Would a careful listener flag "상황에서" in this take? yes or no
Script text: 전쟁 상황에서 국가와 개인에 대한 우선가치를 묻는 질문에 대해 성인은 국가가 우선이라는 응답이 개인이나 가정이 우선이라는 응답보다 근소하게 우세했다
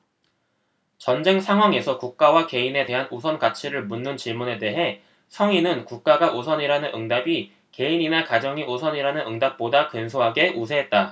no